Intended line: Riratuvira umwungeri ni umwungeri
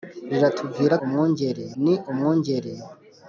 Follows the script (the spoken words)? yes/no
yes